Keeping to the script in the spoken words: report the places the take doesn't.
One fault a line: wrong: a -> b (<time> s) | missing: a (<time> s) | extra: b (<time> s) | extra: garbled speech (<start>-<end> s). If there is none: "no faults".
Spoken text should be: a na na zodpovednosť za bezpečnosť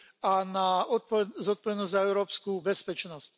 missing: na (0.8 s)
extra: európsku (2.0 s)